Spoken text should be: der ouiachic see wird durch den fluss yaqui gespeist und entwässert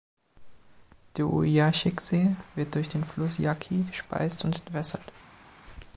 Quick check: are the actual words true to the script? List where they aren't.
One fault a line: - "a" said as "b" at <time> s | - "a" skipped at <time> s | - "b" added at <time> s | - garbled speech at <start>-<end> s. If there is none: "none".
none